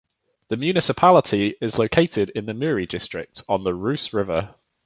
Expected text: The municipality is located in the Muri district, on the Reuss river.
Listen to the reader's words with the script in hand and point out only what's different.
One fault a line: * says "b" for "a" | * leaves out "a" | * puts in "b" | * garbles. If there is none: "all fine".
all fine